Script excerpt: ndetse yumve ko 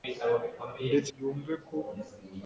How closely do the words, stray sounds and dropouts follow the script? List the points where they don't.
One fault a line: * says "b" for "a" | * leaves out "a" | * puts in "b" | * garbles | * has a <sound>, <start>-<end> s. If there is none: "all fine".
all fine